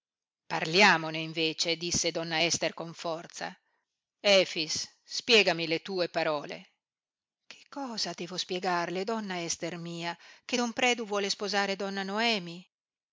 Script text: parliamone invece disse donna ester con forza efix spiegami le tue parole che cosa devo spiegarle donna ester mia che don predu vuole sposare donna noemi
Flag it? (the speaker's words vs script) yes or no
no